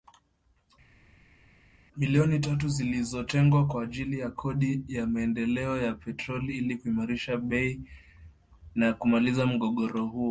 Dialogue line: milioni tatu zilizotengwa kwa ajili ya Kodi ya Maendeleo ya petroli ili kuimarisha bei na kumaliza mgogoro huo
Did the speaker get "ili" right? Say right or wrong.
right